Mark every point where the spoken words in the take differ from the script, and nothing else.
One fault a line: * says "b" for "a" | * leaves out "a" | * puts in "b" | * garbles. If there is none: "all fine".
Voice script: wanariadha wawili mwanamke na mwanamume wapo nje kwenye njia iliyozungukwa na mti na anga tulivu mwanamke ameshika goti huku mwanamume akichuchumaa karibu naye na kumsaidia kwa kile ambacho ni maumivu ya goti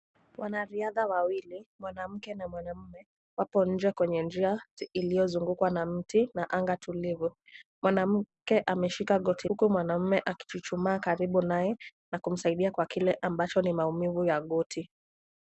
all fine